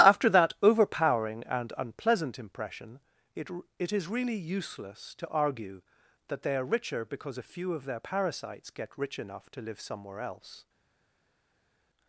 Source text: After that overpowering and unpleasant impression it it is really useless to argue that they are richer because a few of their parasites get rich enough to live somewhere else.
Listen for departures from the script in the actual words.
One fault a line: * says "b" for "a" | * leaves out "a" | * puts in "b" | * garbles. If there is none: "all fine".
all fine